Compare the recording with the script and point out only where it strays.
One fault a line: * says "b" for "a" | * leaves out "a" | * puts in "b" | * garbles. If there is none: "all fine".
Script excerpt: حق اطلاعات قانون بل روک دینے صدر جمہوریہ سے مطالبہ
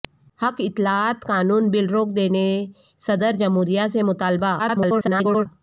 * garbles